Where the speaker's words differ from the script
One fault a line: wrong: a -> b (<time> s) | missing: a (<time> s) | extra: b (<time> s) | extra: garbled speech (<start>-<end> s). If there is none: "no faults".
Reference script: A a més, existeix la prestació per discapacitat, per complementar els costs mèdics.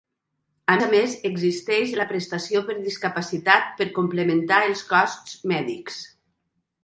no faults